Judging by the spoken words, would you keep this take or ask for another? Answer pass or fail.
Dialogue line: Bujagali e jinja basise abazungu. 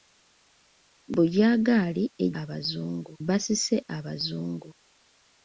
fail